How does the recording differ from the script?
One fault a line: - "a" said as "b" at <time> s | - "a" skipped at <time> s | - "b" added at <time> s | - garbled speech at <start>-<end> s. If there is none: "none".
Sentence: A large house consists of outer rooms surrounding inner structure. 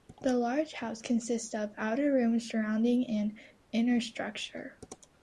- "A" said as "The" at 0.2 s
- "an" added at 3.1 s